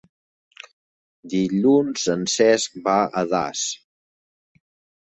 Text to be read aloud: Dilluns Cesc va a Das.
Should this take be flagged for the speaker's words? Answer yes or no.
yes